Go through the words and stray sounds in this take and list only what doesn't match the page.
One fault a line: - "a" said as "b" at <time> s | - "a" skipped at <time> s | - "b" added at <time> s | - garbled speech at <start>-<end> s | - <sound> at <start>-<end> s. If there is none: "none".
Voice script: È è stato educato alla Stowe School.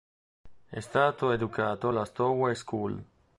- "è" skipped at 0.8 s